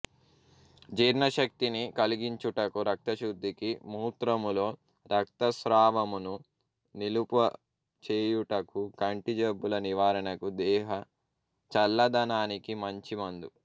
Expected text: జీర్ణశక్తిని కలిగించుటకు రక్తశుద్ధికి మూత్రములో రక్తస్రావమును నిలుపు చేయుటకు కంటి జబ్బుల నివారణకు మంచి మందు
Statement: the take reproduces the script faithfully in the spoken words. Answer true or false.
false